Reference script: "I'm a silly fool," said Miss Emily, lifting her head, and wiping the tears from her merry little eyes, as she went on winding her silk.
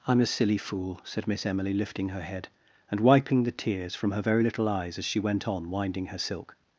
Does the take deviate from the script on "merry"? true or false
true